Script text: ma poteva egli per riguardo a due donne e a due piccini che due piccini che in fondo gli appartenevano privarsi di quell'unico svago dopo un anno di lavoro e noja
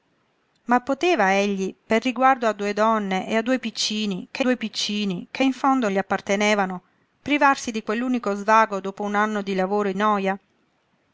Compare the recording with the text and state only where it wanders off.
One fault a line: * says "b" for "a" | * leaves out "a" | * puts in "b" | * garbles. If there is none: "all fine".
all fine